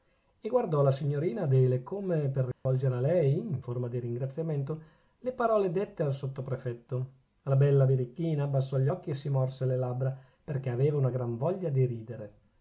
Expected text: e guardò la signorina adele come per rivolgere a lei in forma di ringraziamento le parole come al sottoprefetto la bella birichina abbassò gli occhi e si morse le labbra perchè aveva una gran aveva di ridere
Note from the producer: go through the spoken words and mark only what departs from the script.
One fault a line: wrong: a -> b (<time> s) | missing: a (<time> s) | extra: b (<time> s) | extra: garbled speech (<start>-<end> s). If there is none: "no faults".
wrong: come -> dette (5.7 s)
wrong: aveva -> voglia (11.4 s)